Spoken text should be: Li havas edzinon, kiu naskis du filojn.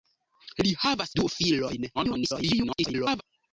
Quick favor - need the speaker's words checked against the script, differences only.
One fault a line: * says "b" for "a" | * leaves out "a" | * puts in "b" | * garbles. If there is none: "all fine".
* leaves out "edzinon kiu naskis"
* garbles